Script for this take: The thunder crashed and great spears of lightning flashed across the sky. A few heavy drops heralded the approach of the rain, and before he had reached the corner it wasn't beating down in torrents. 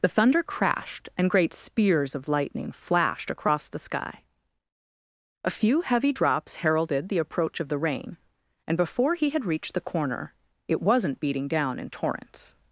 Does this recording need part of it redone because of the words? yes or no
no